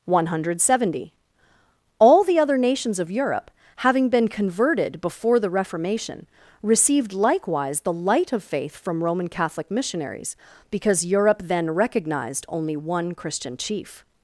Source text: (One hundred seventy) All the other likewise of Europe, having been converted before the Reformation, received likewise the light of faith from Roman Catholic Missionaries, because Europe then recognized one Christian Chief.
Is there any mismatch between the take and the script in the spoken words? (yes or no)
yes